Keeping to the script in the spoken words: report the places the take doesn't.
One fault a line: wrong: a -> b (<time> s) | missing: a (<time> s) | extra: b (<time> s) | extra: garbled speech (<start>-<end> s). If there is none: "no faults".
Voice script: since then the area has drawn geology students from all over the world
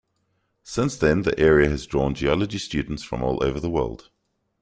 no faults